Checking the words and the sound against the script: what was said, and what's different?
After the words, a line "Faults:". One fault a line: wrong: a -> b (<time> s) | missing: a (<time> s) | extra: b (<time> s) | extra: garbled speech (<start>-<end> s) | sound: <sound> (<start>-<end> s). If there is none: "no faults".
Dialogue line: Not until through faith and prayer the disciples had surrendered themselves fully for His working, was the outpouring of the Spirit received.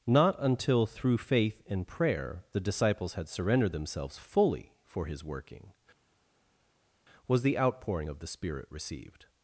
Not until through faith and prayer the disciples had surrendered themselves fully for His working, was the outpouring of the Spirit received.
Faults:
no faults